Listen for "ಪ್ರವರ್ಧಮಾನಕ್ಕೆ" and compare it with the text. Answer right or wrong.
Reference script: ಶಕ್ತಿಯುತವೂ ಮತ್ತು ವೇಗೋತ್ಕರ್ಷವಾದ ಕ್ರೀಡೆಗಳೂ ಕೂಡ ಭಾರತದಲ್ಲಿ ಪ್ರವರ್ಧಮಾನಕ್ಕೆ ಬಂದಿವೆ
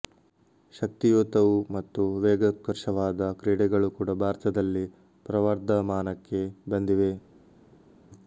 right